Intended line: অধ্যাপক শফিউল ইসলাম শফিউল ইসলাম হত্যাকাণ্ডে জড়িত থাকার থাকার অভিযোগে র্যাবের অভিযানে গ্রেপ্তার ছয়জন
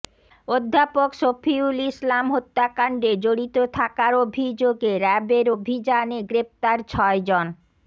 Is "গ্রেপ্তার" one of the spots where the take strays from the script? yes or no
no